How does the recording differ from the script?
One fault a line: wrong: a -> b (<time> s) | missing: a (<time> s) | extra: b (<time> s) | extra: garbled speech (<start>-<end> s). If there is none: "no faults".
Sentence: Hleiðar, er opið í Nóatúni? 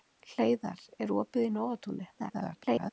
extra: garbled speech (2.2-2.9 s)